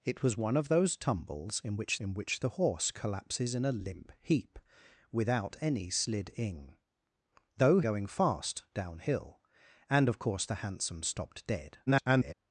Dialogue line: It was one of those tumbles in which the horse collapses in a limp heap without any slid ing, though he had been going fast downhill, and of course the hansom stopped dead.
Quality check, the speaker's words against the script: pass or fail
fail